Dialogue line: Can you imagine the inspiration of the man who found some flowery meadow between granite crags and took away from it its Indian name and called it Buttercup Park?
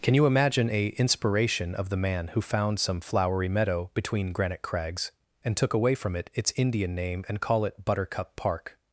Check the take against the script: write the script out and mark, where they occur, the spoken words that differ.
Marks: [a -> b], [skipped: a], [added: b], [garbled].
Can you imagine [the -> a] inspiration of the man who found some flowery meadow between granite crags and took away from it its Indian name and [called -> call] it Buttercup Park?